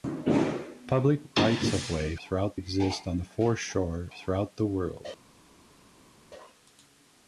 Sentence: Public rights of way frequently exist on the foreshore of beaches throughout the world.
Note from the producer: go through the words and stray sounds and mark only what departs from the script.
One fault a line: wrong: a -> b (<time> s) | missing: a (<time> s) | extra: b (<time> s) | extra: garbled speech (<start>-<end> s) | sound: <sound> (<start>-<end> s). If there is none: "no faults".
wrong: frequently -> throughout (2.2 s)
missing: of beaches (4.1 s)